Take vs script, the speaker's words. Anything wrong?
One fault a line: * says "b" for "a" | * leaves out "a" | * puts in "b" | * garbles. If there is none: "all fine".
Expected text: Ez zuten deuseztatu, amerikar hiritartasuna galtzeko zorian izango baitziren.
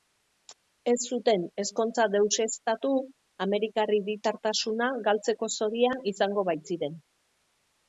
* puts in "ezkontza"